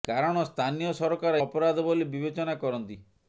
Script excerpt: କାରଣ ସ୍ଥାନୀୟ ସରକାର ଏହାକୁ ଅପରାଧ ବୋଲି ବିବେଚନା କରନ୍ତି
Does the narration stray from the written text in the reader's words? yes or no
yes